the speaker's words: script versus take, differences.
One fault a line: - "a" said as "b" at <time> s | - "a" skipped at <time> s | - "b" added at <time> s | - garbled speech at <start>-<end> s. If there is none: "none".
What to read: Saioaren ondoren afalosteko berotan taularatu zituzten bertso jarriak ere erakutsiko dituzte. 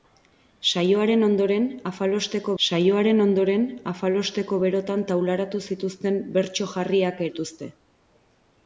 - "saioaren ondoren afalosteko" added at 2.6 s
- "ere erakutsiko" skipped at 7.2 s